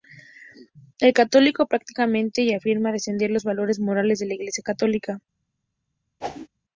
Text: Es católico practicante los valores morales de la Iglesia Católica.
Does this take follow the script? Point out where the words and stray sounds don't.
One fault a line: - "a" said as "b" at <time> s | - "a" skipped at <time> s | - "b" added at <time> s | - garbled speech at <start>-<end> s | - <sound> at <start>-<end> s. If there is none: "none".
- "y afirma defender" added at 2.4 s
- whoosh at 6.2-6.5 s